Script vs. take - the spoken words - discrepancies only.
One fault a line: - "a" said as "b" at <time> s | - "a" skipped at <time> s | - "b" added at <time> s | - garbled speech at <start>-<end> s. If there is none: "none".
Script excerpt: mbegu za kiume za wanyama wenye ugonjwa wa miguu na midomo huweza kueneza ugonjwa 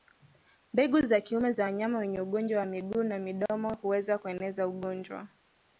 none